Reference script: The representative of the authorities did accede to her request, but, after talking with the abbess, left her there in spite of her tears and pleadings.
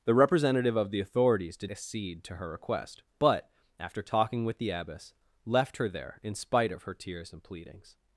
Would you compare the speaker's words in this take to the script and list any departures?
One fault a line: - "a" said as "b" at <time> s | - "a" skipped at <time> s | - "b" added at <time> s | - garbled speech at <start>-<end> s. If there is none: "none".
none